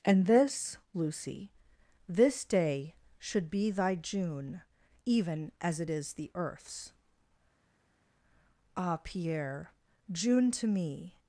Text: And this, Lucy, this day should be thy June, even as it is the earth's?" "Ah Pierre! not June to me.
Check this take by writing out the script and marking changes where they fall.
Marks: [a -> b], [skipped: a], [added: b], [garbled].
And this, Lucy, this day should be thy June, even as it is the earth's?" "Ah Pierre! [skipped: not] June to me.